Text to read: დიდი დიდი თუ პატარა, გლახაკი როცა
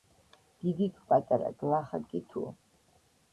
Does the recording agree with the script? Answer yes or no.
no